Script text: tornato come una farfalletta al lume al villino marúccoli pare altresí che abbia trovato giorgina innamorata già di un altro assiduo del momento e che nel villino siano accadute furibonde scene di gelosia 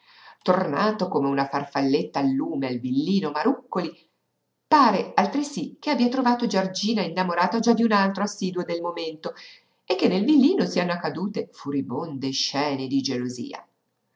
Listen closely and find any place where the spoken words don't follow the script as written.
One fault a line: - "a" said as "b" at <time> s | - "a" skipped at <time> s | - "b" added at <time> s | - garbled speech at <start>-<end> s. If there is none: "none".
none